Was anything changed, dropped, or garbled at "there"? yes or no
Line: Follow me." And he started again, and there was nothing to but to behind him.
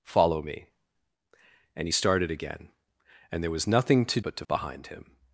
no